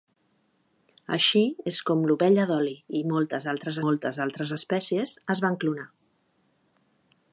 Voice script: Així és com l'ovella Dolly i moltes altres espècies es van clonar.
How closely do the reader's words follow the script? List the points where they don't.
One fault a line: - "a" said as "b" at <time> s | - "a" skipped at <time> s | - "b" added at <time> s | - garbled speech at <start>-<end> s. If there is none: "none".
- "moltes altres" added at 3.9 s